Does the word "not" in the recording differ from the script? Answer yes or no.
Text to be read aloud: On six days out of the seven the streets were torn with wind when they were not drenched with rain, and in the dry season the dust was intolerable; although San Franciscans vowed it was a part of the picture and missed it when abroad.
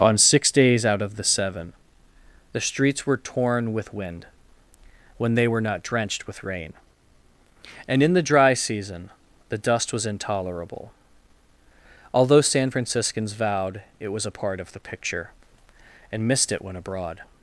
no